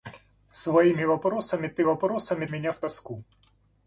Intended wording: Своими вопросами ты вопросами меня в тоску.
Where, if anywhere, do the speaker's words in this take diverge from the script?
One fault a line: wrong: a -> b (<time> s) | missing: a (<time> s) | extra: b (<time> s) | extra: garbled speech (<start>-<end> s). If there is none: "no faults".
no faults